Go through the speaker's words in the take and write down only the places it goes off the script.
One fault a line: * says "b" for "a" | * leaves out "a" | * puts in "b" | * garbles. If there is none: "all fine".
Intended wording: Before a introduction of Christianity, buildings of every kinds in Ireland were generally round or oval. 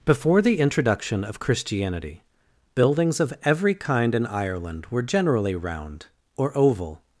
* says "the" for "a"
* says "kind" for "kinds"